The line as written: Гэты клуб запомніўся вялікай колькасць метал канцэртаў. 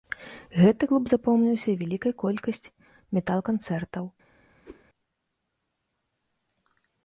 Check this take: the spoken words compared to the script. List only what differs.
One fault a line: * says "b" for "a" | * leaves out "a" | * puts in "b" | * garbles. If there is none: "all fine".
all fine